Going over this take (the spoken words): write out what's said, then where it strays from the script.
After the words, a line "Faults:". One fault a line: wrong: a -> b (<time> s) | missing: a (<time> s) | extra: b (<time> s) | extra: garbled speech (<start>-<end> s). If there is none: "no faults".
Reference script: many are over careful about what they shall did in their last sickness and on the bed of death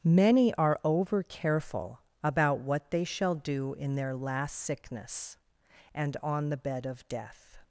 many are over careful about what they shall do in their last sickness and on the bed of death
Faults:
wrong: did -> do (3.4 s)